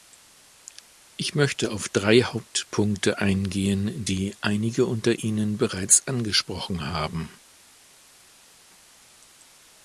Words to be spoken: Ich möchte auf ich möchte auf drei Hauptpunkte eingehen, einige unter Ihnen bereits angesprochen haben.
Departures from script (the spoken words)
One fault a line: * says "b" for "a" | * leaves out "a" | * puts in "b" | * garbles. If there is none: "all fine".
* leaves out "ich möchte auf"
* puts in "die"